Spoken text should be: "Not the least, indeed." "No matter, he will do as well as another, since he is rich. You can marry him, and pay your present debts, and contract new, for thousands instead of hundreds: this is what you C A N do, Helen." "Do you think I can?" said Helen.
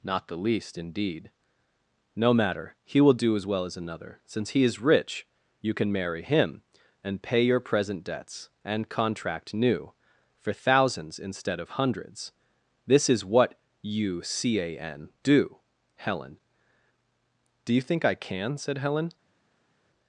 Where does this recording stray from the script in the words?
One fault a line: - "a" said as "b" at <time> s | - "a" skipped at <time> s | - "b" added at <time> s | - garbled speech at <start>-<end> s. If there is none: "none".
none